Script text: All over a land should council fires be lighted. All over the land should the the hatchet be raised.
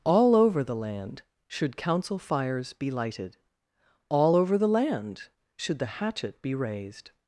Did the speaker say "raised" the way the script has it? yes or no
yes